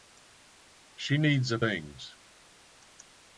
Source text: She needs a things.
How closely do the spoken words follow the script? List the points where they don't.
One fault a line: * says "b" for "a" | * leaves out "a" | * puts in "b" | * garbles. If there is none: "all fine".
all fine